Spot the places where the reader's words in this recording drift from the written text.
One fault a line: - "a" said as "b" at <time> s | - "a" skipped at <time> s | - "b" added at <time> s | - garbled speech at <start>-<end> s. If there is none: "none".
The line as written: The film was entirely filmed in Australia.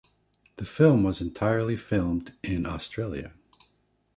none